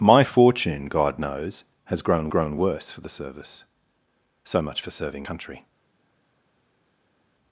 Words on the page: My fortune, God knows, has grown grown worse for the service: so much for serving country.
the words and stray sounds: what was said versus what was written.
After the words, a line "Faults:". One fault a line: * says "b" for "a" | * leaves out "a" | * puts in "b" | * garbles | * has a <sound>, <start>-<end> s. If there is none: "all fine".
My fortune, God knows, has grown grown worse for the service: so much for serving country.
Faults:
all fine